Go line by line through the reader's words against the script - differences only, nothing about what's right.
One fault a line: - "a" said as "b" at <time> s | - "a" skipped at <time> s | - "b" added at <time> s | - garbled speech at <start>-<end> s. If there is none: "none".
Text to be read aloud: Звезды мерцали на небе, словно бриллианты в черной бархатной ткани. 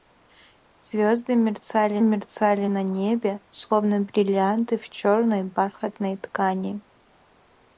- "мерцали" added at 2.0 s